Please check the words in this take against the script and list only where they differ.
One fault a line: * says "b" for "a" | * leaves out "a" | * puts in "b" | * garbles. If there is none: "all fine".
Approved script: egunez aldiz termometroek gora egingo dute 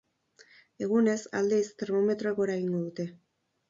all fine